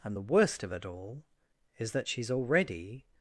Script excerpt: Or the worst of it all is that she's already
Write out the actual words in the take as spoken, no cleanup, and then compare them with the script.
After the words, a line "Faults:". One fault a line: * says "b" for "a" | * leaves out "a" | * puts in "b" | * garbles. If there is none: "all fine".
And the worst of it all is that she's already
Faults:
* says "And" for "Or"